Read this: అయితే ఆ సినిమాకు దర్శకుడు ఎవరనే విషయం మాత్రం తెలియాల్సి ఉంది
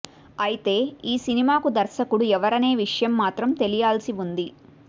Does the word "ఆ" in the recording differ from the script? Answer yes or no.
yes